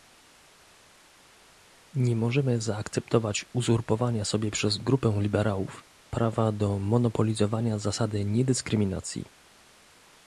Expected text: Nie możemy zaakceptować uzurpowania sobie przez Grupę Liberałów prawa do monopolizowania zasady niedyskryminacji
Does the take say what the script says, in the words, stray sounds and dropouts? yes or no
yes